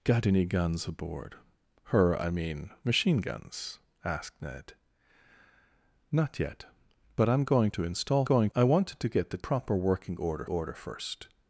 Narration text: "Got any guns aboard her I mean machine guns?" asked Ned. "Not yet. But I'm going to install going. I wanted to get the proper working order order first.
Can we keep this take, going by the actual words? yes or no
yes